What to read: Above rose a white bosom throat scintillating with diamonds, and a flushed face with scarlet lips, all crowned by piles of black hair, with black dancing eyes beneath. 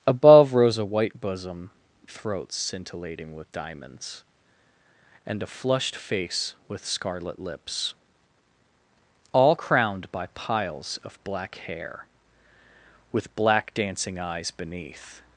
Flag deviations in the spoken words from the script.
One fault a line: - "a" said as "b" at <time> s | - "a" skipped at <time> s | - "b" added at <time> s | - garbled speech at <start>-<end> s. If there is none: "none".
none